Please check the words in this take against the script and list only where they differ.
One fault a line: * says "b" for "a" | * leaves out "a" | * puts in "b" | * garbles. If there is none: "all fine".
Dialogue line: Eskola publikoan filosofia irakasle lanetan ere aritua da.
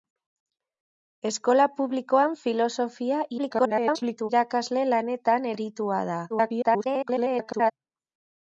* garbles
* leaves out "ere"
* garbles